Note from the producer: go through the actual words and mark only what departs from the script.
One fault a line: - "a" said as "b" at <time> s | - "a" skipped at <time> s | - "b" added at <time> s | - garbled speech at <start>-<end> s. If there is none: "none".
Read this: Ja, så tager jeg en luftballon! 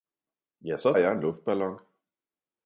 - "tager" skipped at 0.9 s